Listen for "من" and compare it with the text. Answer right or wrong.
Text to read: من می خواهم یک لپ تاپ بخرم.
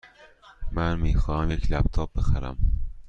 right